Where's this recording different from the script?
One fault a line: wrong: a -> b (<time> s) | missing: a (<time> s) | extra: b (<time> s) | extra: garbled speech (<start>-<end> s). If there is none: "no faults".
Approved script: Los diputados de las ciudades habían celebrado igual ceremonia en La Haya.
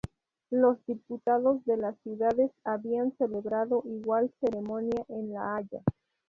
no faults